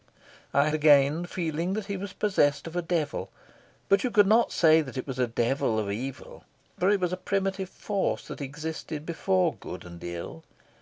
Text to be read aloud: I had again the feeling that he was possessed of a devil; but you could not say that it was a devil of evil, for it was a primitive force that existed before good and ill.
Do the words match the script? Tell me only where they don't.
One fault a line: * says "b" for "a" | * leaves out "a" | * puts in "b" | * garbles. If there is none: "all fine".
* leaves out "had"